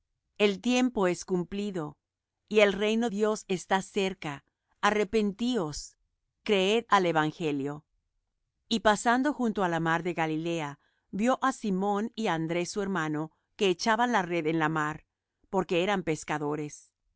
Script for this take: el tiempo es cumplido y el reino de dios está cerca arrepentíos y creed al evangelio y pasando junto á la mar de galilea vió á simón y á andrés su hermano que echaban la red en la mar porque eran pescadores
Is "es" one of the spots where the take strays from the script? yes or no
no